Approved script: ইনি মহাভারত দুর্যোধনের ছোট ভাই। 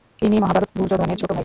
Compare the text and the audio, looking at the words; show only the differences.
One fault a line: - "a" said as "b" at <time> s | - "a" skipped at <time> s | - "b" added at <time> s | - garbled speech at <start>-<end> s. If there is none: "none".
none